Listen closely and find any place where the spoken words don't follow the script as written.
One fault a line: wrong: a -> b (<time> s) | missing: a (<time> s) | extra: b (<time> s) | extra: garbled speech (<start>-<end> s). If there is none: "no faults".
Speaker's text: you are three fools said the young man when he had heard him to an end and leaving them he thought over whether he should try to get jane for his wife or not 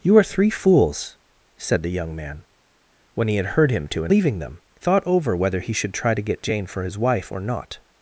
missing: end and (4.1 s)
missing: he (4.6 s)